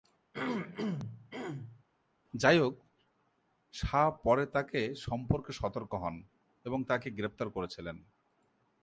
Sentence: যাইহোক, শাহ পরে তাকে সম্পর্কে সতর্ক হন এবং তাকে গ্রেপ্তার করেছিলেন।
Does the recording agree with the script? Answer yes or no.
yes